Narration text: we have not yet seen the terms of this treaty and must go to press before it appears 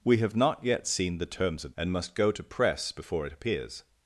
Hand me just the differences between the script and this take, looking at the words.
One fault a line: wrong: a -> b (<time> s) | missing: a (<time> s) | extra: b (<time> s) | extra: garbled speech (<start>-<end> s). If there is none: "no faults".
missing: this treaty (1.7 s)